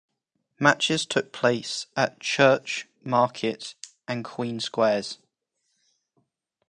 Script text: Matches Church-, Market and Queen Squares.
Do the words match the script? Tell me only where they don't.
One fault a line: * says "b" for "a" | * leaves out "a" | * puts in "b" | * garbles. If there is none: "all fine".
* puts in "took place at"